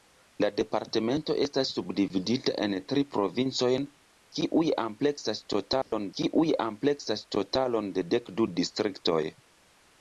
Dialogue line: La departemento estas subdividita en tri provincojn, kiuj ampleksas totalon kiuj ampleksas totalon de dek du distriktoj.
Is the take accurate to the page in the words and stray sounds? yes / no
no